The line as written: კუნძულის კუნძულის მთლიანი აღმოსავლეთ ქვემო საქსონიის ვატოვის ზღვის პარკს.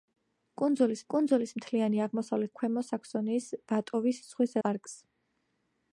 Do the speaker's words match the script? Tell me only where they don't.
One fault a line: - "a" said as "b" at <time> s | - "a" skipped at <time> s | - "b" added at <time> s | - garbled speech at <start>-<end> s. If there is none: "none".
none